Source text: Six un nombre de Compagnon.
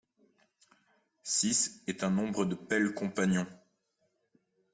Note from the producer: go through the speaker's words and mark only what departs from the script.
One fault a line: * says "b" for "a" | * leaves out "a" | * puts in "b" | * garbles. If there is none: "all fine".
* puts in "est"
* puts in "Pell"